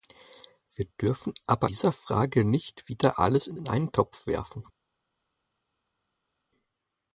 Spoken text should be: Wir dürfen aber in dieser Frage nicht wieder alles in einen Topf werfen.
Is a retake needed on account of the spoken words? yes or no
yes